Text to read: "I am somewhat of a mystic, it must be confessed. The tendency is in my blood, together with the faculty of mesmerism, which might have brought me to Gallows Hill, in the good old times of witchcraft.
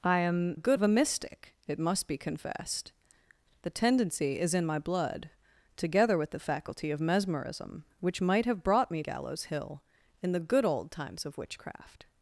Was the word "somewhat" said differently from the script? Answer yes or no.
yes